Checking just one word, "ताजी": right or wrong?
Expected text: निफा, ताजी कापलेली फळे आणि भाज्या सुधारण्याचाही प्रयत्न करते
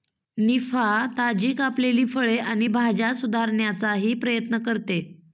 right